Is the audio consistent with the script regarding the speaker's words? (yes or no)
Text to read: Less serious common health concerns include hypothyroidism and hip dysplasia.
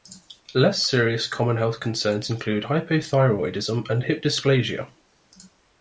yes